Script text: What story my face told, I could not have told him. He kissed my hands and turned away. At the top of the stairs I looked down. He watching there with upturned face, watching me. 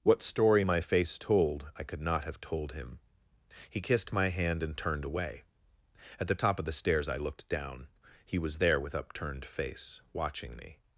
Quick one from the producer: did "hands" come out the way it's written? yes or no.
no